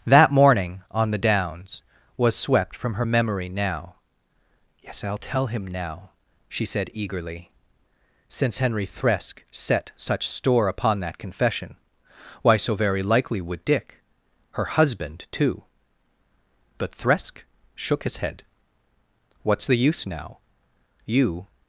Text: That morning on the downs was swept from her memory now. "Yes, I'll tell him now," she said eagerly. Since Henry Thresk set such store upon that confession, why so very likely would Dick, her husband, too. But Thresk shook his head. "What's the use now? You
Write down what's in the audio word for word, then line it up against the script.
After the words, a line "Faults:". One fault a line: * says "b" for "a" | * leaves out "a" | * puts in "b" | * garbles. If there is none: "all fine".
That morning on the downs was swept from her memory now. "Yes, I'll tell him now," she said eagerly. Since Henry Thresk set such store upon that confession, why so very likely would Dick, her husband, too. But Thresk shook his head. "What's the use now? You
Faults:
all fine